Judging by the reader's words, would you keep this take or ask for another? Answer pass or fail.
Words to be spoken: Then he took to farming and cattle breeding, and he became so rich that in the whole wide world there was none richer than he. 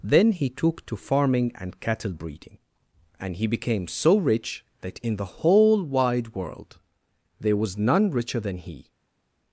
pass